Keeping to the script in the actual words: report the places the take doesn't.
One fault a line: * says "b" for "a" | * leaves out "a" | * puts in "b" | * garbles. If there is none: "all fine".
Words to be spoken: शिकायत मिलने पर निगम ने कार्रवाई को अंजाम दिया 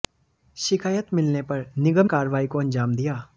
* leaves out "ने"